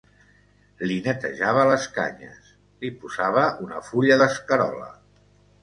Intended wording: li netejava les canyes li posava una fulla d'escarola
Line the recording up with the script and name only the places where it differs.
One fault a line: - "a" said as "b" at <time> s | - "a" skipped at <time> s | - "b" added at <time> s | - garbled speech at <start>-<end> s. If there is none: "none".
none